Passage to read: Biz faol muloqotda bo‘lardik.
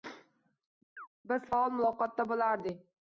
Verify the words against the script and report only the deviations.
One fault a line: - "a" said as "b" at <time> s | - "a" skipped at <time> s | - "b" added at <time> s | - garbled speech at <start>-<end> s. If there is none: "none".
none